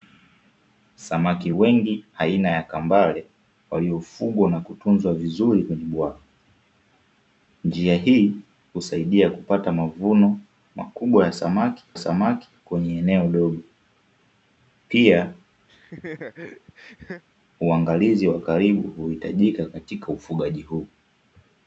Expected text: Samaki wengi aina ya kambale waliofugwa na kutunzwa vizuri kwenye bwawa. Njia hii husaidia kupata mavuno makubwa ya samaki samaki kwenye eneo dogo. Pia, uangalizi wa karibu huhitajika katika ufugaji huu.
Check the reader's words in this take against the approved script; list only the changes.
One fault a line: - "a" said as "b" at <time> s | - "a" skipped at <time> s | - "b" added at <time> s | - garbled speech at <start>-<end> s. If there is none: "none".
none